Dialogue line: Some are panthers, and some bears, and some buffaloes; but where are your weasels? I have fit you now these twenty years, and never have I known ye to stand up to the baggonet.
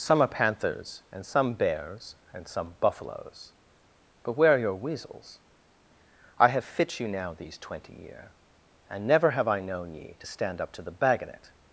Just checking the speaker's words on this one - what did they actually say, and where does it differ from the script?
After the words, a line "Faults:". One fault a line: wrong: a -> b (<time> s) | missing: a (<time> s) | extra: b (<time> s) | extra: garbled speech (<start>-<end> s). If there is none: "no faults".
Some are panthers, and some bears, and some buffaloes; but where are your weasels? I have fit you now these twenty year, and never have I known ye to stand up to the baggonet.
Faults:
wrong: years -> year (7.9 s)